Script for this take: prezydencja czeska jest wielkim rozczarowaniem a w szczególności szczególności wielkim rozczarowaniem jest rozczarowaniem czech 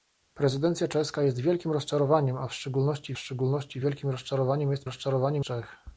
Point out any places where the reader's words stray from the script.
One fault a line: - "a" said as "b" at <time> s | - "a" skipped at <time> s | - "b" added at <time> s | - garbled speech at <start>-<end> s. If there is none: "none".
none